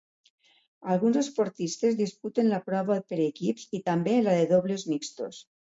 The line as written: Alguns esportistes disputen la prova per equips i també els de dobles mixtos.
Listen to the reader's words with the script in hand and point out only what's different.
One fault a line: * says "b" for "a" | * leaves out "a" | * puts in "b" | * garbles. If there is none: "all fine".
* says "la" for "els"